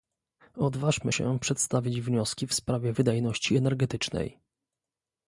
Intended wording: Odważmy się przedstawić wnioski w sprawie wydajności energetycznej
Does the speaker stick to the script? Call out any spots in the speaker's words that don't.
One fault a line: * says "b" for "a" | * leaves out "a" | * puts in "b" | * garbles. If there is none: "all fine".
all fine